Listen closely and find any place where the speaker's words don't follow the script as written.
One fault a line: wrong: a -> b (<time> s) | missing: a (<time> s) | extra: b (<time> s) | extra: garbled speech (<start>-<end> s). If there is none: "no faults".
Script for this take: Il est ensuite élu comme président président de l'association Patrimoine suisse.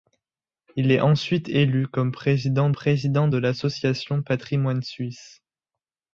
no faults